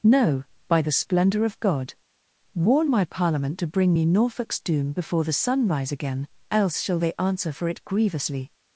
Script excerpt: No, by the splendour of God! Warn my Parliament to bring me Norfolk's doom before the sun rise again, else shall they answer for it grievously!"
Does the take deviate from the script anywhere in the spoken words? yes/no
no